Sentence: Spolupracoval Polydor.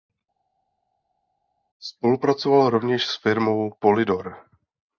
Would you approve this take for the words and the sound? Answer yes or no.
no